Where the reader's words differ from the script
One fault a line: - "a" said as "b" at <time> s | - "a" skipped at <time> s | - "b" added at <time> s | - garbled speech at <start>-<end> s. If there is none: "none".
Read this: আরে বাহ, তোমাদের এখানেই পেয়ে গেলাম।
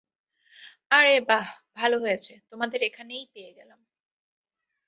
- "ভালো হয়েছে" added at 1.8 s